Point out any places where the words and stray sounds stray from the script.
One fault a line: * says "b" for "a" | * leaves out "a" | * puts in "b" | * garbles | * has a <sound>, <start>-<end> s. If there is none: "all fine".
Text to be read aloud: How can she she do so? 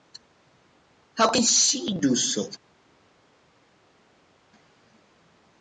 * leaves out "she"